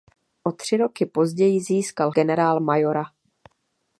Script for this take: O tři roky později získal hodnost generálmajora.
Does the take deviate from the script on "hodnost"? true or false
true